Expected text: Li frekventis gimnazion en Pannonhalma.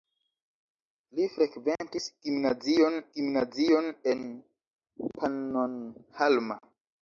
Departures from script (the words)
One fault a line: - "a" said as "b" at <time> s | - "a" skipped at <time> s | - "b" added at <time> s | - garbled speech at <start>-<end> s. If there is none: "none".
- "gimnazion" added at 3.2 s